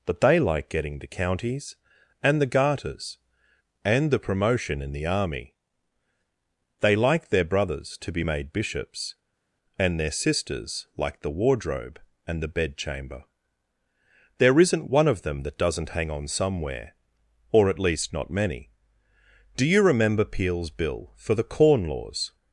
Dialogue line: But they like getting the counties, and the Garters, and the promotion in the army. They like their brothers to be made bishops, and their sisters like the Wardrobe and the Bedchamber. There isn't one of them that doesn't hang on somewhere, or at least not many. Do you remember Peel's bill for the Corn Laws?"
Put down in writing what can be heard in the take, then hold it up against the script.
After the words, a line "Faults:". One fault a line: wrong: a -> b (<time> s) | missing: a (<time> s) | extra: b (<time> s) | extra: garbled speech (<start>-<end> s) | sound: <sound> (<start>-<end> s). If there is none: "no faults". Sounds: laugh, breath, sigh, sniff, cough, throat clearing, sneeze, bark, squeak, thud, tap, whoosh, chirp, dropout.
But they like getting the counties, and the Garters, and the promotion in the army. They like their brothers to be made bishops, and their sisters like the Wardrobe and the Bedchamber. There isn't one of them that doesn't hang on somewhere, or at least not many. Do you remember Peel's bill for the Corn Laws?"
Faults:
no faults